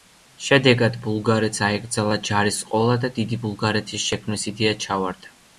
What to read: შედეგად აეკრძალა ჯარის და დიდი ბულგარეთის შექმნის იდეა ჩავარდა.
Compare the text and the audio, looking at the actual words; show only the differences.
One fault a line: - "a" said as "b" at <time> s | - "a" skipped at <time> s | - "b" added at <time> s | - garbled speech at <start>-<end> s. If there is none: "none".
- "ბულგარეთს" added at 1.0 s
- "ყოლა" added at 2.7 s